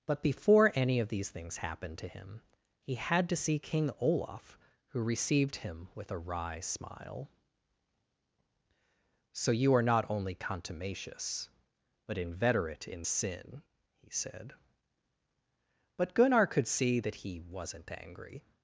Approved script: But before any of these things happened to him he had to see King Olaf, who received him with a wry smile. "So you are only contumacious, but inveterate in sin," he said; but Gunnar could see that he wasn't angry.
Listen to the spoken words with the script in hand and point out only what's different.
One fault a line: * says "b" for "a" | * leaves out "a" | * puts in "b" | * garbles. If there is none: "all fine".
* puts in "not"